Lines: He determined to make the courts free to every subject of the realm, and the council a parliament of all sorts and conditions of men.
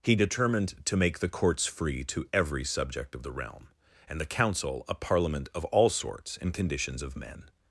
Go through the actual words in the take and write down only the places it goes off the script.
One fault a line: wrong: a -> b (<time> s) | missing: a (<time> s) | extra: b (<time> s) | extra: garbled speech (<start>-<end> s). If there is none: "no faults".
no faults